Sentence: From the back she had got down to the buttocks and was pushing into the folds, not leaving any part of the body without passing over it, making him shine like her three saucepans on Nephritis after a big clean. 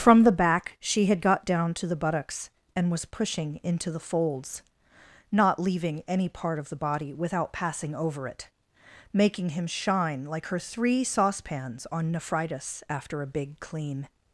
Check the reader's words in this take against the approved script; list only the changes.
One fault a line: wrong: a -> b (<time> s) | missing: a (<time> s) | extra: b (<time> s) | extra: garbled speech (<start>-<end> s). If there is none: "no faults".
no faults